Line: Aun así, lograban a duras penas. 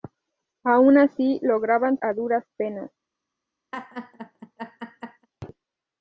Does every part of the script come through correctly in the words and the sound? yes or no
no